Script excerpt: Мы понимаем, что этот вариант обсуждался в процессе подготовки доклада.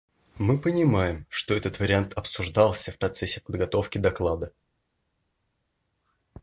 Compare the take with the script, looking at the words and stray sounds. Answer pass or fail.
pass